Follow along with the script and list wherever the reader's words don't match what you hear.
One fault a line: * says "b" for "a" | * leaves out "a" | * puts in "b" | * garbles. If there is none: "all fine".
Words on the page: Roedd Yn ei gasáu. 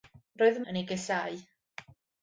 all fine